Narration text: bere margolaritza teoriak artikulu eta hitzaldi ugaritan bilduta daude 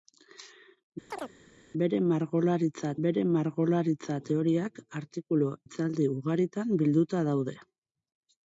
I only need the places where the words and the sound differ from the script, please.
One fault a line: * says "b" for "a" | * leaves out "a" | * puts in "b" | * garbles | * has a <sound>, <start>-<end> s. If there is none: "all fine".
* has a chirp, 1.1-1.3 s
* puts in "bere margolaritza"
* leaves out "eta"